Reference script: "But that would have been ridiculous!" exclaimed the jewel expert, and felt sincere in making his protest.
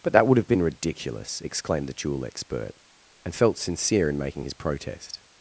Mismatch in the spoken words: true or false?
false